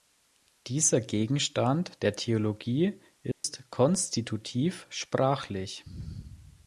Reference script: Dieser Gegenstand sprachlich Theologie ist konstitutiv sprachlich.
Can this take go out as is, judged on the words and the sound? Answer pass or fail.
fail